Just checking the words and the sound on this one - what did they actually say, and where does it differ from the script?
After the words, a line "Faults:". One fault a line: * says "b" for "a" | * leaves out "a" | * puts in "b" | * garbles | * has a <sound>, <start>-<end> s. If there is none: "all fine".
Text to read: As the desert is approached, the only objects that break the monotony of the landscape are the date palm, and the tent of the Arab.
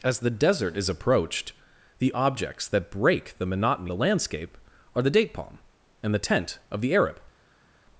As the desert is approached, the objects that break the monotony the landscape are the date palm, and the tent of the Arab.
Faults:
* leaves out "only"
* leaves out "of"